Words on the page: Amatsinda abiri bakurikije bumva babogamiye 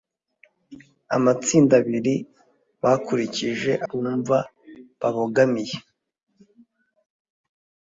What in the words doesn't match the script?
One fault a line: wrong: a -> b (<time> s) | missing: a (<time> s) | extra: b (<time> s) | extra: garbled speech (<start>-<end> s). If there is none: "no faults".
no faults